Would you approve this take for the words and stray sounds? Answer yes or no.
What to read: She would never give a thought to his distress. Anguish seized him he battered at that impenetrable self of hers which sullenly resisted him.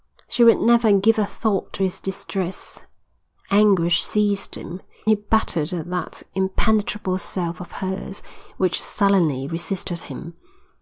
yes